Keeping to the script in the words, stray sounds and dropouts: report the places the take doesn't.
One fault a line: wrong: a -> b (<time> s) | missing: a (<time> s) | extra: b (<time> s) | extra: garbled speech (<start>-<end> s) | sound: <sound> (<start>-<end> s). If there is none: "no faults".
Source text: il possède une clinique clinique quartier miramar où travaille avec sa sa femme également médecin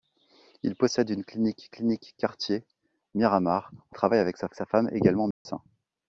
sound: dropout (5.3-5.5 s)